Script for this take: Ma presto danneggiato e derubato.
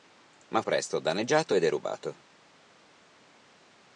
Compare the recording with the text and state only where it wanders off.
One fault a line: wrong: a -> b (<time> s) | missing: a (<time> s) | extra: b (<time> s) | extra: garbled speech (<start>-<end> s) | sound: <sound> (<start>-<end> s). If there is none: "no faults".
no faults